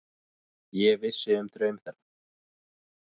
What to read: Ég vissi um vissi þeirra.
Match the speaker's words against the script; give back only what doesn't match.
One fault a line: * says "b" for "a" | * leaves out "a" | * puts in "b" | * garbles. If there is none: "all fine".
* says "draum" for "vissi"